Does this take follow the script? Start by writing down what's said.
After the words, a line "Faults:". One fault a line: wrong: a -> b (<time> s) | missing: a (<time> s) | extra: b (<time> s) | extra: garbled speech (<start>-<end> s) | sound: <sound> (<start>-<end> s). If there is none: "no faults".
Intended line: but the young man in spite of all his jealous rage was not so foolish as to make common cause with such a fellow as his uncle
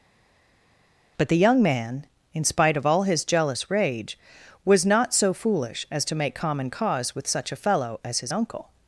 but the young man in spite of all his jealous rage was not so foolish as to make common cause with such a fellow as his uncle
Faults:
no faults